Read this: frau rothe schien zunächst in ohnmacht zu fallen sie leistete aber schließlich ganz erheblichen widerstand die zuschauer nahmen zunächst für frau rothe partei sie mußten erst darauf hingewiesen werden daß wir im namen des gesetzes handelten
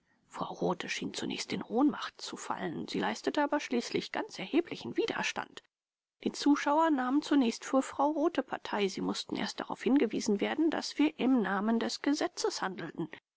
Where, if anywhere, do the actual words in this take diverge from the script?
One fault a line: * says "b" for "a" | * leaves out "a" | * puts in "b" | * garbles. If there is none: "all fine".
all fine